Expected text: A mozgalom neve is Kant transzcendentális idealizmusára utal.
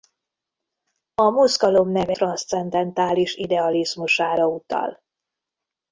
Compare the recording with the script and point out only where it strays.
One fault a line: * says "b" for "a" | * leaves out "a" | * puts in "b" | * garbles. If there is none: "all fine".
* leaves out "is Kant"